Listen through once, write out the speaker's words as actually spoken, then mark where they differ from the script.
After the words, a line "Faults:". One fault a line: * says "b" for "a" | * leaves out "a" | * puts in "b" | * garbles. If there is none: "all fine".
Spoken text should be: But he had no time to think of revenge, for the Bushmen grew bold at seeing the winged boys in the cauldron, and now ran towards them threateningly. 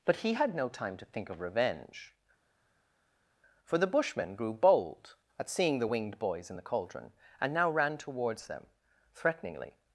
But he had no time to think of revenge, for the Bushmen grew bold at seeing the winged boys in the cauldron, and now ran towards them threateningly.
Faults:
all fine